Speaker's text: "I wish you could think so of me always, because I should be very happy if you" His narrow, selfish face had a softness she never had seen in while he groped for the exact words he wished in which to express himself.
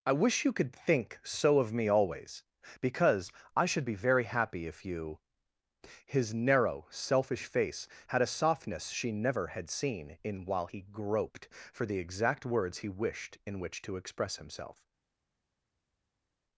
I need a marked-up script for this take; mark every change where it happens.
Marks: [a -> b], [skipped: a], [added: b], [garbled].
"I wish you could think so of me always, because I should be very happy if you" His narrow, selfish face had a softness she never had seen in while he groped for the exact words he wished in which to express himself.